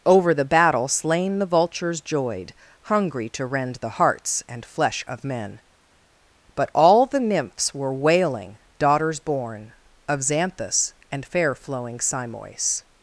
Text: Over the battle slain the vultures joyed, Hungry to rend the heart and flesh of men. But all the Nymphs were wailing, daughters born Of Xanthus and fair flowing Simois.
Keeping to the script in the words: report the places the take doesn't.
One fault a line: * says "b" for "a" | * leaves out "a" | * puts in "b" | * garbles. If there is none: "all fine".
* says "hearts" for "heart"